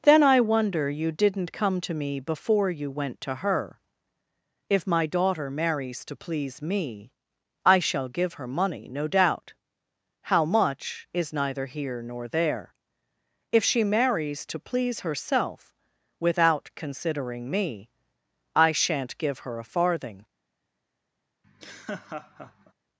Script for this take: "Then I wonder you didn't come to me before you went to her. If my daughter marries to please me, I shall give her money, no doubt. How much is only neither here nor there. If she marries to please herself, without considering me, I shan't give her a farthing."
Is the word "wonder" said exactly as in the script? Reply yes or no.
yes